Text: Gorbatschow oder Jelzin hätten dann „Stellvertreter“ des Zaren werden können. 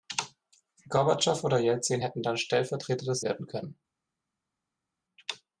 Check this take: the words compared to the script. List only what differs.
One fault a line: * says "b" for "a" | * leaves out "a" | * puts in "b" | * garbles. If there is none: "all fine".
* leaves out "Zaren"